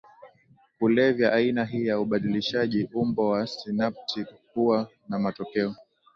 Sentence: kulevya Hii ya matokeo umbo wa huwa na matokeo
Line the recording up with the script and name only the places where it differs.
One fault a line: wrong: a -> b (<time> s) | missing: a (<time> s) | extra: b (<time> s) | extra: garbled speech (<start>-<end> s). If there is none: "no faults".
extra: Aina (1.3 s)
wrong: matokeo -> ubadilishaji (2.0 s)
extra: sinapti (3.5 s)